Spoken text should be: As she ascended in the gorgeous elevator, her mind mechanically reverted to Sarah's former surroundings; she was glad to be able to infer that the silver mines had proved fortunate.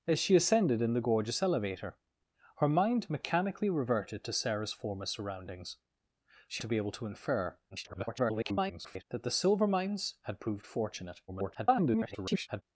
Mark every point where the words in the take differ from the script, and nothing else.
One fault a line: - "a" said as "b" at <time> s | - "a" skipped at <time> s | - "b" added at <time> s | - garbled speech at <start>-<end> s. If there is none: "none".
- "was glad" skipped at 6.6 s
- garbled speech at 7.7-9.0 s
- garbled speech at 11.3-12.6 s